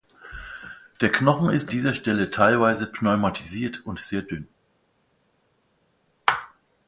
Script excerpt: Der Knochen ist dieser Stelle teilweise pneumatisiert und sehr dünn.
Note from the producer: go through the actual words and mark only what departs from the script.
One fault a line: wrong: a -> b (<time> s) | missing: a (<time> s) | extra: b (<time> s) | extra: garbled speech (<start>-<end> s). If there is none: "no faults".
no faults